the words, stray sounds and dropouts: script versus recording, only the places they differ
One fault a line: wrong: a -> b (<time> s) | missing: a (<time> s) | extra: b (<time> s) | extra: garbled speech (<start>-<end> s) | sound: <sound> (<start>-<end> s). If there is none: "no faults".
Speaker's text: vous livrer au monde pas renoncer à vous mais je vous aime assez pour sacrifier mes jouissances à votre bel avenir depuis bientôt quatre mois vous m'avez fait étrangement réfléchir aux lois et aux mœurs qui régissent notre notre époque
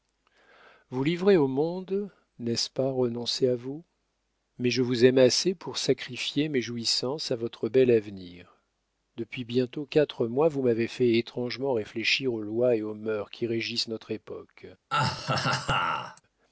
extra: n'est ce (2.4 s)
missing: notre (14.1 s)
sound: laugh (14.9-16.2 s)